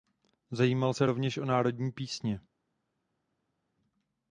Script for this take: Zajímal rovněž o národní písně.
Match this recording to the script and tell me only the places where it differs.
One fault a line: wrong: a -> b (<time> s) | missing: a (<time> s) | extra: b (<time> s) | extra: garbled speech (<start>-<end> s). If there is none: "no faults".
extra: se (0.9 s)